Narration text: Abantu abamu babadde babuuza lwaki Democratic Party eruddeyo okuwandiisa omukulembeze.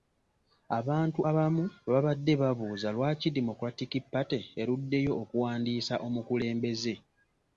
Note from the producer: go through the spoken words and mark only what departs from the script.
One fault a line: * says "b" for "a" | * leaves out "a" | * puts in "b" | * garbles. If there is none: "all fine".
all fine